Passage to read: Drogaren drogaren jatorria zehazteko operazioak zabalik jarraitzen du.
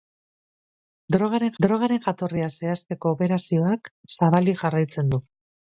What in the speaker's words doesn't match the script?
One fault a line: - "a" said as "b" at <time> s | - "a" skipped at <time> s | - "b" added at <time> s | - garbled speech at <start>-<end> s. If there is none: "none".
none